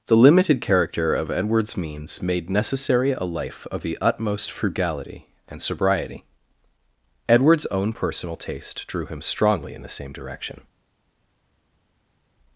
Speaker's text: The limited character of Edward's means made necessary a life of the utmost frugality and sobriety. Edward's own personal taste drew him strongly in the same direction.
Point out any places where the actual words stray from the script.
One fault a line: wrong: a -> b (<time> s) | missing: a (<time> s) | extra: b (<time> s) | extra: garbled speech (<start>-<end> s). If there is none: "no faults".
no faults